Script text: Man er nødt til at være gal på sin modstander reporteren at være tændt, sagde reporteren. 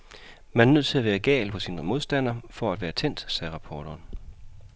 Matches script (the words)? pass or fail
fail